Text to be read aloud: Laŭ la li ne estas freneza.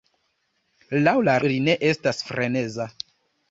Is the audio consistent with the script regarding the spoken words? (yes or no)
yes